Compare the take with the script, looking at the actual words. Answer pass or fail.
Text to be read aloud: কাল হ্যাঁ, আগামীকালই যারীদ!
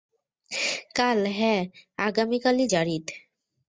pass